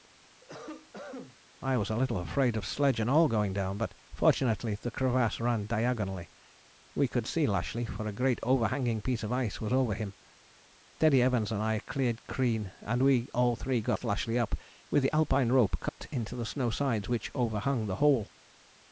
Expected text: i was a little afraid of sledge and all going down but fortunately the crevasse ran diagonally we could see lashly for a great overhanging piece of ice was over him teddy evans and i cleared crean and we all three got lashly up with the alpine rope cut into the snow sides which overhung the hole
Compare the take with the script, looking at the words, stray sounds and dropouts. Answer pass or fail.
fail